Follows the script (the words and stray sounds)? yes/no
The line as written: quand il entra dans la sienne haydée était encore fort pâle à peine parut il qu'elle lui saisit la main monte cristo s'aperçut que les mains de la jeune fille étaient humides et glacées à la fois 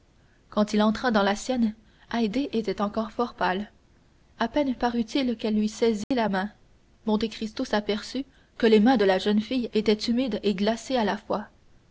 no